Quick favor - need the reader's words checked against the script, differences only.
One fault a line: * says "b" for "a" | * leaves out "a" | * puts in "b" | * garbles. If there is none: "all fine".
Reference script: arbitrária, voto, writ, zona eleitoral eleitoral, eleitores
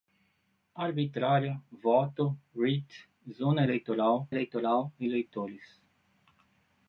all fine